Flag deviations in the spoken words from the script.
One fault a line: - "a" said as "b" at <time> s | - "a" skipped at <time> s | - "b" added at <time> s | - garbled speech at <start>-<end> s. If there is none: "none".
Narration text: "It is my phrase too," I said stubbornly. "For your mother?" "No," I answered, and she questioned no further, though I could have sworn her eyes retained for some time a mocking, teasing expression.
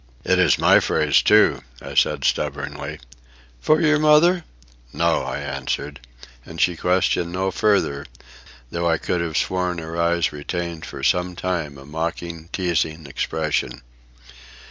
none